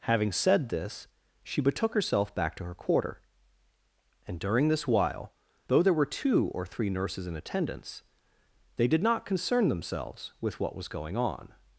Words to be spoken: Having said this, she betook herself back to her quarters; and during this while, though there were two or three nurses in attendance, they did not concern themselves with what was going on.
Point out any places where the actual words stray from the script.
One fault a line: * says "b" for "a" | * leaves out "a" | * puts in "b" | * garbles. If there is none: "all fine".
* says "quarter" for "quarters"